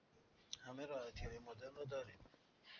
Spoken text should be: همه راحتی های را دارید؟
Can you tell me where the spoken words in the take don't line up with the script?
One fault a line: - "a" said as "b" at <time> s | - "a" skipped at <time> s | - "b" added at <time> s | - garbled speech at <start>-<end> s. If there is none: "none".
- "مدرن" added at 1.4 s